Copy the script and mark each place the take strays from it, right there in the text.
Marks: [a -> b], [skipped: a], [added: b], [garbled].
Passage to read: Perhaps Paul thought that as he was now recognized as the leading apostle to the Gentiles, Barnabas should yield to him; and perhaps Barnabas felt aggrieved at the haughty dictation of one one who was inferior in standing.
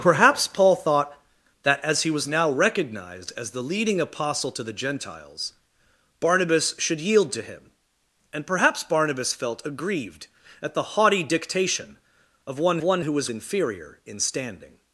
Perhaps Paul thought that as he was now recognized as the leading apostle to the Gentiles, Barnabas should yield to him; and perhaps Barnabas felt aggrieved at the haughty dictation of one one who was inferior in standing.